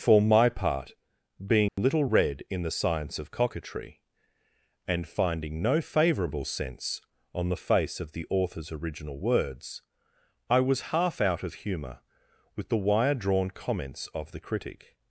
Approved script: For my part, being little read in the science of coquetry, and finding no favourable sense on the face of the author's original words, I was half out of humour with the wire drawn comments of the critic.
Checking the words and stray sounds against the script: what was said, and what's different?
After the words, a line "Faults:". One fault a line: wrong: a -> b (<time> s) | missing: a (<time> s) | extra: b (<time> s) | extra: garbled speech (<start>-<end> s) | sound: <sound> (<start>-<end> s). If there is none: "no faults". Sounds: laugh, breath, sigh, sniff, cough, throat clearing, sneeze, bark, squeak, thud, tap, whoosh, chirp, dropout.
For my part, being little read in the science of coquetry, and finding no favourable sense on the face of the author's original words, I was half out of humour with the wire drawn comments of the critic.
Faults:
sound: dropout (1.7-1.8 s)